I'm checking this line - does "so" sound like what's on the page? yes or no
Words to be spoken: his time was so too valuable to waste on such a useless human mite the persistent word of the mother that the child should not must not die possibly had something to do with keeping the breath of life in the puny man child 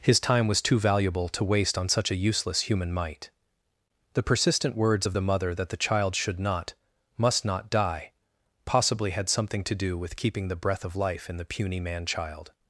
no